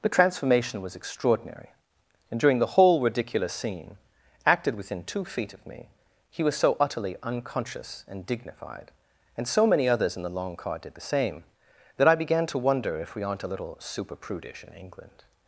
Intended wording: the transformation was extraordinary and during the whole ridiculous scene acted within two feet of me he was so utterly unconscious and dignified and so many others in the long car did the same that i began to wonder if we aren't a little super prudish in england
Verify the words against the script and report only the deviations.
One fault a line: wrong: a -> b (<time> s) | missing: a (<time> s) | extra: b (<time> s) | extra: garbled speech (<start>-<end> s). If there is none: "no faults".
no faults